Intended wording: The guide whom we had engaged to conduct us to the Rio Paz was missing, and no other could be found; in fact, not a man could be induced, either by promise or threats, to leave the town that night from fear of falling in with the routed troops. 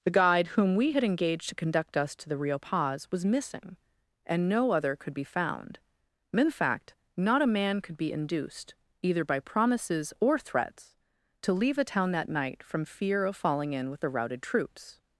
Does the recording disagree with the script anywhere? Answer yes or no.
yes